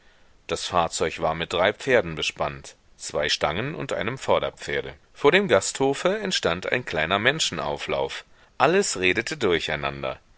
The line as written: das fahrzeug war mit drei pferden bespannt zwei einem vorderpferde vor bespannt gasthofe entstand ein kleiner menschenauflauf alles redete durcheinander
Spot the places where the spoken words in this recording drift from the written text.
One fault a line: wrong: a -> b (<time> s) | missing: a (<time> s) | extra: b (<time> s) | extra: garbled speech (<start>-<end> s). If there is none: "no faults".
extra: stangen und (3.3 s)
wrong: bespannt -> dem (5.3 s)